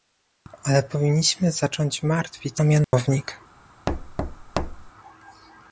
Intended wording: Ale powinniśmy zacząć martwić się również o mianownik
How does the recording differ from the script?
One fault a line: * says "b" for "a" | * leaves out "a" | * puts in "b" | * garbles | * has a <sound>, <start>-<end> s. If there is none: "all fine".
* leaves out "się również"
* has a dropout, 2.8-2.9 s
* has a thud, 3.9-4.9 s